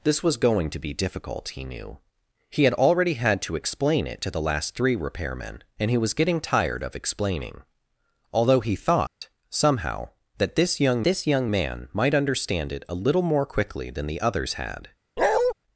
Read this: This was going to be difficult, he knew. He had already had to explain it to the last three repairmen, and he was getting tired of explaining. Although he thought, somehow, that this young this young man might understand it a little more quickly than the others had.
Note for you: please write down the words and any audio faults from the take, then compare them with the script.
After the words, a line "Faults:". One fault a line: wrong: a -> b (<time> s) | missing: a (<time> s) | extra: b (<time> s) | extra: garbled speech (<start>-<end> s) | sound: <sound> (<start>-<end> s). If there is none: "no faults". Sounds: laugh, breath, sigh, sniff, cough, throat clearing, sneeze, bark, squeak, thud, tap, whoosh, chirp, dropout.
This was going to be difficult, he knew. He had already had to explain it to the last three repairmen, and he was getting tired of explaining. Although he thought, somehow, that this young this young man might understand it a little more quickly than the others had.
Faults:
sound: dropout (9.1-9.2 s)
sound: bark (15.2-15.5 s)